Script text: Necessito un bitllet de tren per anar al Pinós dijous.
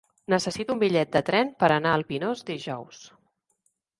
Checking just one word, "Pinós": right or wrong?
right